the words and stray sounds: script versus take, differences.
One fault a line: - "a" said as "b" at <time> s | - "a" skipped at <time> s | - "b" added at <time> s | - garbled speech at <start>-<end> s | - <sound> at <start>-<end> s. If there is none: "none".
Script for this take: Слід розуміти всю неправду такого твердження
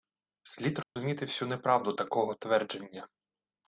- dropout at 0.8-1.0 s